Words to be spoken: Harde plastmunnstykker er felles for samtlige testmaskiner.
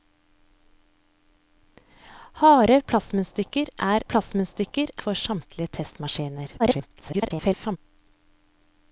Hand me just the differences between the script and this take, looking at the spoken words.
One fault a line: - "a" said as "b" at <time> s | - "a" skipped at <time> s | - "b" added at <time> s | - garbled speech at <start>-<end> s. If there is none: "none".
- "felles" said as "plastmunnstykker" at 4.1 s
- garbled speech at 6.6-7.8 s